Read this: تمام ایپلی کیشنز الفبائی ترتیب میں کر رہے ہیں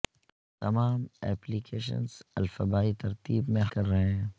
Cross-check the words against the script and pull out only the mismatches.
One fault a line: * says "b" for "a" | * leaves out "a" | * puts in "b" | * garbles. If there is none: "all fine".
all fine